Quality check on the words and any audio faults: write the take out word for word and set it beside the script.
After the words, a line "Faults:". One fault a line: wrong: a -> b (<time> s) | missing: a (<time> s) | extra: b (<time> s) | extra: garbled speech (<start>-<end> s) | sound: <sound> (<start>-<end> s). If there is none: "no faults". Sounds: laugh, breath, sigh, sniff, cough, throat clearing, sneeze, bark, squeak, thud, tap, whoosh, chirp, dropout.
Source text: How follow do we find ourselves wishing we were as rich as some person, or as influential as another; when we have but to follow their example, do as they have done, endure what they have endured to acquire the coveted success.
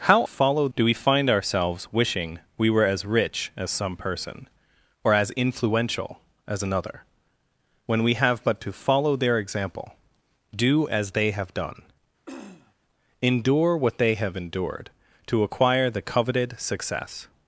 How follow do we find ourselves wishing we were as rich as some person, or as influential as another; when we have but to follow their example, do as they have done, endure what they have endured to acquire the coveted success.
Faults:
sound: throat clearing (12.3-12.7 s)